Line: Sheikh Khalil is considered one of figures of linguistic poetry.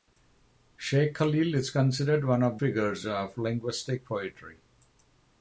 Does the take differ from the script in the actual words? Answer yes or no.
no